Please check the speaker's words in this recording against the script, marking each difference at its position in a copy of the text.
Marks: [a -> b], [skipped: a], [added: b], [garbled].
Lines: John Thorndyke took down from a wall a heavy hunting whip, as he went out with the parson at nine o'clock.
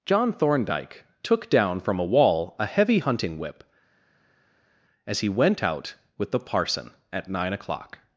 John Thorndyke took down from a wall a heavy hunting whip, as he went out with the parson at nine o'clock.